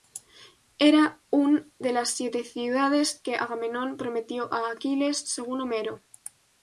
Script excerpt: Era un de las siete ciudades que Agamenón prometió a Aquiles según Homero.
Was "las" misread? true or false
false